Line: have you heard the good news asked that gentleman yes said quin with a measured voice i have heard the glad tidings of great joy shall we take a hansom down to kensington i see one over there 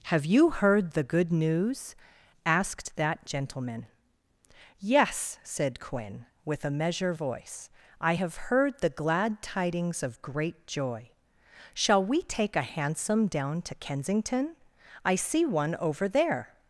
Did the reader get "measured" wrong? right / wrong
wrong